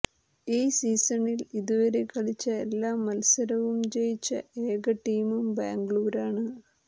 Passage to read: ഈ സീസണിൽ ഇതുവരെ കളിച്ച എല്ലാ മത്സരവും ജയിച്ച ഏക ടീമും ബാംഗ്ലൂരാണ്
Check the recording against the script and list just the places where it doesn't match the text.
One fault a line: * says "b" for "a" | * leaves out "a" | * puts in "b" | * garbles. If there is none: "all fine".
all fine